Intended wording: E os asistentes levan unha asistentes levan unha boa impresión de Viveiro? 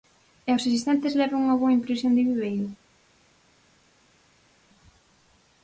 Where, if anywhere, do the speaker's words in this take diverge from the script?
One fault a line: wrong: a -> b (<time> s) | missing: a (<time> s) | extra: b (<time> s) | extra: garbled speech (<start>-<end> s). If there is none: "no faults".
missing: asistentes levan unha (1.6 s)